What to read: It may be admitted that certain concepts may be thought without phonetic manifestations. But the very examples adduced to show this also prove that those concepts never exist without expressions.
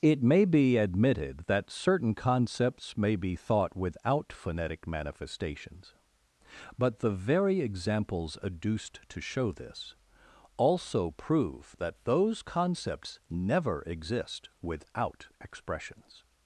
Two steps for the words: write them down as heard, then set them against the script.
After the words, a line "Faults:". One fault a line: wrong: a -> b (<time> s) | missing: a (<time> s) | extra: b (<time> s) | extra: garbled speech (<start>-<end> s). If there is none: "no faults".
It may be admitted that certain concepts may be thought without phonetic manifestations. But the very examples adduced to show this also prove that those concepts never exist without expressions.
Faults:
no faults